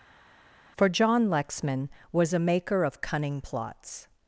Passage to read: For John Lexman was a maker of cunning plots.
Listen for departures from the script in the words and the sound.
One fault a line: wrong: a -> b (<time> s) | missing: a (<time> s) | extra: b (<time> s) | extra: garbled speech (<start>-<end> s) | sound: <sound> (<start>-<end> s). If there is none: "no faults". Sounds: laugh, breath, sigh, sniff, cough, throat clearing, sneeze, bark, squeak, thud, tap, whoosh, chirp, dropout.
no faults